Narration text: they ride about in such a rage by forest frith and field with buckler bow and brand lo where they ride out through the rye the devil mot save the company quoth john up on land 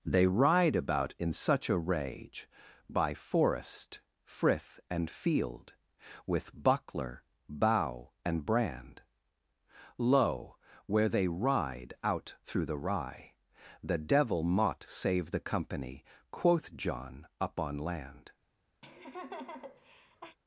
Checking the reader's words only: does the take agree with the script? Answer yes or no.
yes